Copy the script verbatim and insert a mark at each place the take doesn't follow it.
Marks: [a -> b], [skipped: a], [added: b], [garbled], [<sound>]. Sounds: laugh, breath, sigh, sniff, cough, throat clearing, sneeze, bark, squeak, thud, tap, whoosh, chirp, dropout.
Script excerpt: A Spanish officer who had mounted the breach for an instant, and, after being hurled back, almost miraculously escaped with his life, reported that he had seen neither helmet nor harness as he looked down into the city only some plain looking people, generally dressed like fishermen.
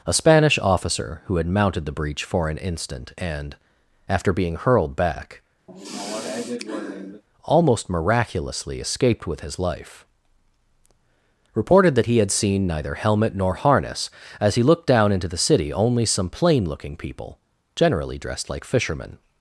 A Spanish officer who had mounted the breach for an instant, and, after being hurled back, [sigh] almost miraculously escaped with his life, reported that he had seen neither helmet nor harness as he looked down into the city only some plain looking people, generally dressed like fishermen.